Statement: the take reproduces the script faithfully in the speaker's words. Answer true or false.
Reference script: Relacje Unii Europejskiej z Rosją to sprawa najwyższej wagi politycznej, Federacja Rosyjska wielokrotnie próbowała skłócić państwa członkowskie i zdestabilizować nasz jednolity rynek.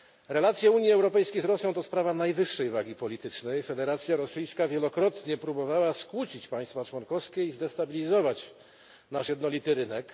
true